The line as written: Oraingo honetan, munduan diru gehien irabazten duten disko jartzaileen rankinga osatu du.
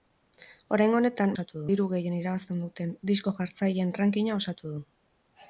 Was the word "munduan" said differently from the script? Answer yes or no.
yes